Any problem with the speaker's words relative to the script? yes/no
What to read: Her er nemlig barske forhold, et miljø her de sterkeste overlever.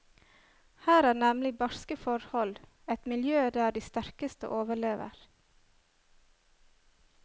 yes